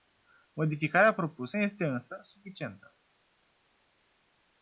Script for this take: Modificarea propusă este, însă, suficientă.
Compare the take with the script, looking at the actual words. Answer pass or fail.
pass